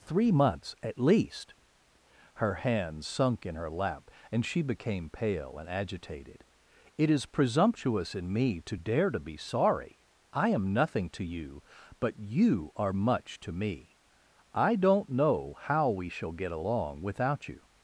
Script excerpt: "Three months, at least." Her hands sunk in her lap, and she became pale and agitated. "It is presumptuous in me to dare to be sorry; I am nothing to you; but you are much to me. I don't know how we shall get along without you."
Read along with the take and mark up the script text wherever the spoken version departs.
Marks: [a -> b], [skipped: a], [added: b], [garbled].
"Three months, at least." Her hands sunk in her lap, and she became pale and agitated. "It is presumptuous in me to dare to be sorry; I am nothing to you; but you are much to me. I don't know how we shall get along without you."